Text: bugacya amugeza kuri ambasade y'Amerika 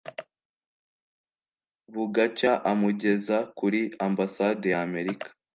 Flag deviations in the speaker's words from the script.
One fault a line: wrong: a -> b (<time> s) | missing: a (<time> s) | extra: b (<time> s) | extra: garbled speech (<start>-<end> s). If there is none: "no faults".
no faults